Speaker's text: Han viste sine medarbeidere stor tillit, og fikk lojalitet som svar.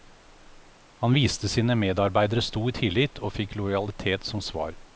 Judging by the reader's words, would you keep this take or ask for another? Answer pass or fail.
pass